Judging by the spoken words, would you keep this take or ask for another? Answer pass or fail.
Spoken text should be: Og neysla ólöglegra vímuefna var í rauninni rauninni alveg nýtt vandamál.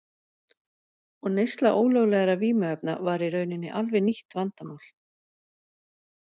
fail